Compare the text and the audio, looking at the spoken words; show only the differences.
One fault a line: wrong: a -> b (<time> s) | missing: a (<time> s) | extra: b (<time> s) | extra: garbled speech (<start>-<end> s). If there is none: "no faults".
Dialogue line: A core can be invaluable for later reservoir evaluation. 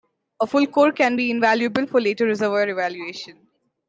extra: full (0.4 s)